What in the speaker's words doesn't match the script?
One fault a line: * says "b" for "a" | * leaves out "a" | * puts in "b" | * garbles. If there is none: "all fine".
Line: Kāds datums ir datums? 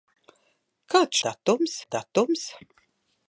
all fine